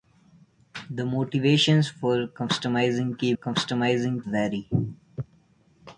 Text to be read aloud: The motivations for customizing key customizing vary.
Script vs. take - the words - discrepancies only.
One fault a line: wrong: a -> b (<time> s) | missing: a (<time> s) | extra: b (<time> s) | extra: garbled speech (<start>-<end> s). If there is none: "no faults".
no faults